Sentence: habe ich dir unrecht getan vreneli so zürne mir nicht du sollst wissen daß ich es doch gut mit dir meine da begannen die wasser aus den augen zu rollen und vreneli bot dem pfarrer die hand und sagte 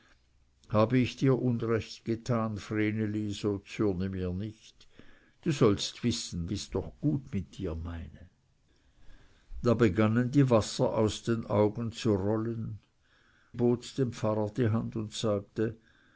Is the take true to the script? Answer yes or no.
no